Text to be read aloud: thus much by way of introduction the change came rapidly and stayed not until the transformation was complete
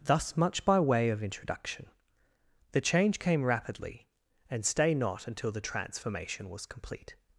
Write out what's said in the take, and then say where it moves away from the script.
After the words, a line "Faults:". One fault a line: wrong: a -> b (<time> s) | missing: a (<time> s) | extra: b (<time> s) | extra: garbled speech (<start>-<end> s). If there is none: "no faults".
thus much by way of introduction the change came rapidly and stay not until the transformation was complete
Faults:
wrong: stayed -> stay (4.7 s)